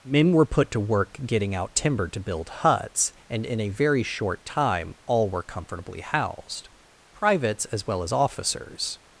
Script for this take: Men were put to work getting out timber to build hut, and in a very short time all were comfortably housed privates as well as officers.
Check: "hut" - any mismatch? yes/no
yes